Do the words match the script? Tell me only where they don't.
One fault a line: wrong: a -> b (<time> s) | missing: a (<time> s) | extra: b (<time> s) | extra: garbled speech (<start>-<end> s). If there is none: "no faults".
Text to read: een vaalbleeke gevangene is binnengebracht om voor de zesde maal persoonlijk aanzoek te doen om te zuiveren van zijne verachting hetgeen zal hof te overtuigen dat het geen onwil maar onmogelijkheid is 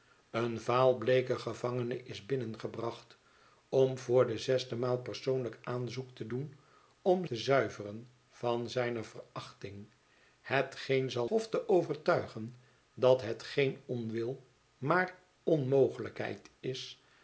no faults